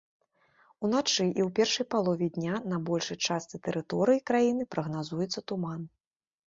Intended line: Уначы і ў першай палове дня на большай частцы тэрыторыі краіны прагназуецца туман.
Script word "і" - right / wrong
right